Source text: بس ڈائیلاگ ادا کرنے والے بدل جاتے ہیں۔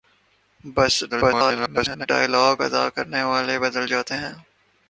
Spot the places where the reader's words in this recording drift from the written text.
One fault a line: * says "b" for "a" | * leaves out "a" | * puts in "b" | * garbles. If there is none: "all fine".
* garbles